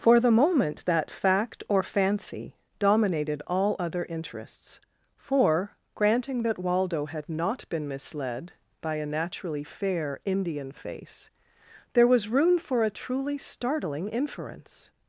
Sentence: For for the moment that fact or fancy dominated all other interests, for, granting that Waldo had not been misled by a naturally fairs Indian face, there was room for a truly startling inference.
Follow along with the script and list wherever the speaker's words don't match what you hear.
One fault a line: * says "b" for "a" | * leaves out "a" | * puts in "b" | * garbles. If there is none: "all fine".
* leaves out "for"
* says "fair" for "fairs"